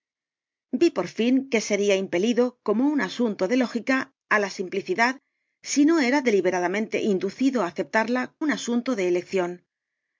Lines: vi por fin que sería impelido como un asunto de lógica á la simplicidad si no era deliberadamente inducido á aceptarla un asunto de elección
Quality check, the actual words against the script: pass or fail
pass